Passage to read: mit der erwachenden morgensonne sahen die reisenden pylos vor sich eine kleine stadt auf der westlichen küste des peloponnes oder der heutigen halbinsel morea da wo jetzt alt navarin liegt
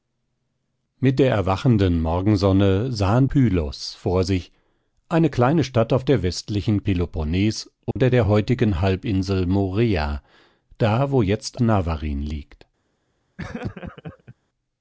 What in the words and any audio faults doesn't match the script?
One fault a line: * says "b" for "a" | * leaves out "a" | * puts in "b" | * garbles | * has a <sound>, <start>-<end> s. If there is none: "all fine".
* leaves out "die reisenden"
* leaves out "küste des"
* has a dropout, 7.9-8.0 s
* leaves out "alt"
* has a laugh, 13.4-14.4 s